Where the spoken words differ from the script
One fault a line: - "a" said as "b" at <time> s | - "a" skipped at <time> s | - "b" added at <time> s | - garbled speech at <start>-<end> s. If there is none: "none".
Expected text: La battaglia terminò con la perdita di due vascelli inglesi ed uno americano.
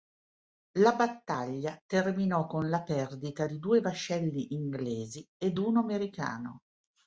none